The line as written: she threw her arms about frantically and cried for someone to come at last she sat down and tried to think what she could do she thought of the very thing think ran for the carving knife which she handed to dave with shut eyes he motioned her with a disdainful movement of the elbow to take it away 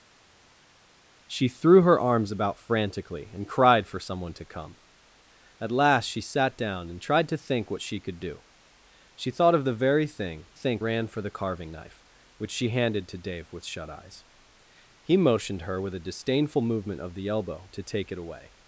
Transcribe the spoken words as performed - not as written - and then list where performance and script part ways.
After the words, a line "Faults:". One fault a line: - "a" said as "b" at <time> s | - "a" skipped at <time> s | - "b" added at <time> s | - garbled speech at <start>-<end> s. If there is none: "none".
she threw her arms about frantically and cried for someone to come at last she sat down and tried to think what she could do she thought of the very thing think ran for the carving knife which she handed to dave with shut eyes he motioned her with a disdainful movement of the elbow to take it away
Faults:
none